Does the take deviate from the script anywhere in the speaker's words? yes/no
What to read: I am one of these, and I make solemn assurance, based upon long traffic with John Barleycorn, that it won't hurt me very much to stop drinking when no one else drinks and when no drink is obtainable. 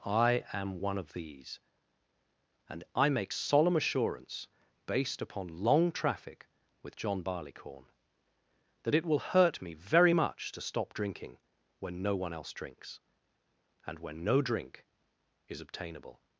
yes